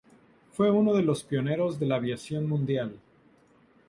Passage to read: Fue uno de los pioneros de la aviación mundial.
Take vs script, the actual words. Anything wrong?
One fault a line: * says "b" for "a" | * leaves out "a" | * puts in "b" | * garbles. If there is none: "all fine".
all fine